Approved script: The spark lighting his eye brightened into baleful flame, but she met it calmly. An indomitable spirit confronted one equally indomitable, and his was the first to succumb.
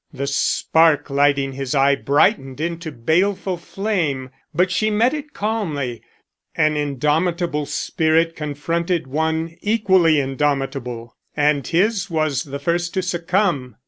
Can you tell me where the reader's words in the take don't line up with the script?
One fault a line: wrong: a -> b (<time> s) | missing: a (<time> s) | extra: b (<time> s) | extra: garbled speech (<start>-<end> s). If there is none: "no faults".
no faults